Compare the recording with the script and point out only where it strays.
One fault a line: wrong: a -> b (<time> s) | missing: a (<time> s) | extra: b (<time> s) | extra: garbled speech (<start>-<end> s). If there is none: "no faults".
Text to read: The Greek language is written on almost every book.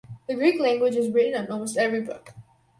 no faults